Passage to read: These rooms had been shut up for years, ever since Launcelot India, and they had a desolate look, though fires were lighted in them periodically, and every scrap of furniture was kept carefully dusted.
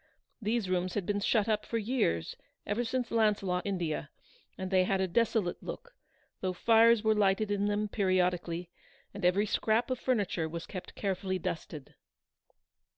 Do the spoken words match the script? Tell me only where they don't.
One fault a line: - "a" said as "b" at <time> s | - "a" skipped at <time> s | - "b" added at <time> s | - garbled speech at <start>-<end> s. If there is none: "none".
none